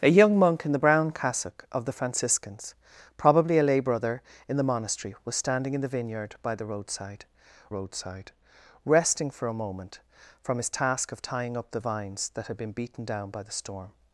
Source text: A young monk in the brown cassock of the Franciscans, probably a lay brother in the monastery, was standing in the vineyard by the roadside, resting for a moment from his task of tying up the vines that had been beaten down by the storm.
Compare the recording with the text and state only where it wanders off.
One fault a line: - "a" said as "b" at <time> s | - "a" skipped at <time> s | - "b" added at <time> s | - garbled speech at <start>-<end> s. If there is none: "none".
- "roadside" added at 7.7 s